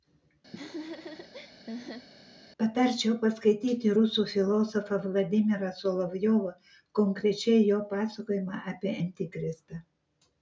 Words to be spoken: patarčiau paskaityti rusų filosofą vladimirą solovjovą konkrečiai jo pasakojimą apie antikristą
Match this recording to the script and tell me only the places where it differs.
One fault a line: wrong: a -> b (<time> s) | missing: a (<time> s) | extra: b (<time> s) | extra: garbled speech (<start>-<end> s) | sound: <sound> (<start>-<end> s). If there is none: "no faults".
sound: laugh (0.5-2.1 s)